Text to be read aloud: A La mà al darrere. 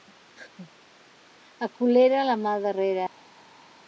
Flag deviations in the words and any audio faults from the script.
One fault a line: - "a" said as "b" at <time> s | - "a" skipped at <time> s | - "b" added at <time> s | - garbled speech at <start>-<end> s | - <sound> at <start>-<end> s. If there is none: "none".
- "Colera" added at 1.8 s